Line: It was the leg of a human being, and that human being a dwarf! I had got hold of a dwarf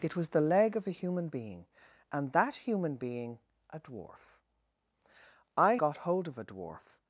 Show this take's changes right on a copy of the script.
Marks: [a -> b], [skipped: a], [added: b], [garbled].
It was the leg of a human being, and that human being a dwarf! I [skipped: had] got hold of a dwarf